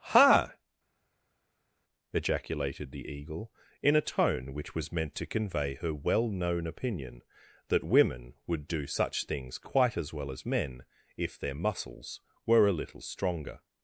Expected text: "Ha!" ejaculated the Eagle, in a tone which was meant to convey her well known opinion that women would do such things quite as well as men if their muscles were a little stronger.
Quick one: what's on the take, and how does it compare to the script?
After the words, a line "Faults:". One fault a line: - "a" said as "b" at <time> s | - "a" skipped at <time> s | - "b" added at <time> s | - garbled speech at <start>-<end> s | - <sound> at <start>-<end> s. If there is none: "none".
"Ha!" ejaculated the Eagle, in a tone which was meant to convey her well known opinion that women would do such things quite as well as men if their muscles were a little stronger.
Faults:
none